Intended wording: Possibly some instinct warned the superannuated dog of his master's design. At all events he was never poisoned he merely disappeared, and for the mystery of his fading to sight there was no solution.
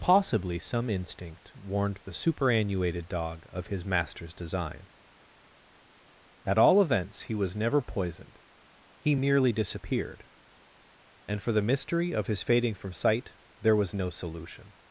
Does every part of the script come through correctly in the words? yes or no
no